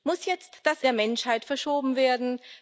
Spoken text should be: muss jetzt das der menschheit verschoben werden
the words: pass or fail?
pass